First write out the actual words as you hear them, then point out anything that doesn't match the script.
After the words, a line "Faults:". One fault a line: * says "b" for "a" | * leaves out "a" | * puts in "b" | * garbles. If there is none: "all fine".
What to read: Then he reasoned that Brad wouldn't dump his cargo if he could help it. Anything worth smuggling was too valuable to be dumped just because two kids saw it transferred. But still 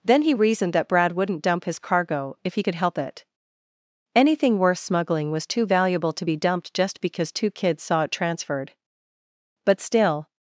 Then he reasoned that Brad wouldn't dump his cargo if he could help it. Anything worth smuggling was too valuable to be dumped just because two kids saw it transferred. But still
Faults:
all fine